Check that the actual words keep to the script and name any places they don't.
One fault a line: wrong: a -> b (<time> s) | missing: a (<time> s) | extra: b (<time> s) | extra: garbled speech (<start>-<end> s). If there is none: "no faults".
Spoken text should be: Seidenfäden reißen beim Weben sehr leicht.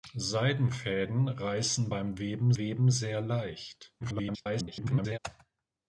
extra: Weben (2.6 s)
extra: garbled speech (4.0-5.2 s)